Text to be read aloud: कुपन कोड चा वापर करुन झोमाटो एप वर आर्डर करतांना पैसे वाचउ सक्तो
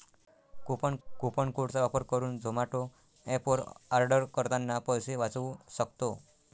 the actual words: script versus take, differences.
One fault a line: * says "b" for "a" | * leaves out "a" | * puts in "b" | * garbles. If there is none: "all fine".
* puts in "कुपन"